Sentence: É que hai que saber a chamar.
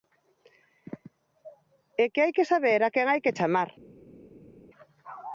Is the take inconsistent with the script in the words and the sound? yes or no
yes